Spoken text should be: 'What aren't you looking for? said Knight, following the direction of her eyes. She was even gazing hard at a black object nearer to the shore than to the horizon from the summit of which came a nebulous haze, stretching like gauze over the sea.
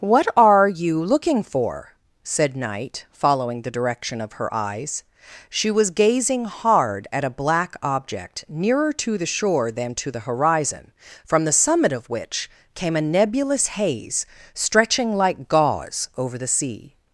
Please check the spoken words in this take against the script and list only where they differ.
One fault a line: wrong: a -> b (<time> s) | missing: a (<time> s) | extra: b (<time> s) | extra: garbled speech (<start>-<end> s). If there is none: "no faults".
wrong: aren't -> are (0.3 s)
missing: even (5.9 s)